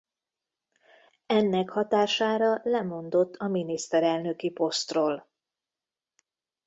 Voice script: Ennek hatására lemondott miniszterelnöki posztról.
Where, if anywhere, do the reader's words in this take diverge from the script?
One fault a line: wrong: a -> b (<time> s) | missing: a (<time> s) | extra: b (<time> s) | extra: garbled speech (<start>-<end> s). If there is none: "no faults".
extra: a (3.3 s)